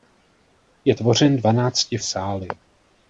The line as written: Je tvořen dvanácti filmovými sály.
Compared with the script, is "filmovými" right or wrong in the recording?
wrong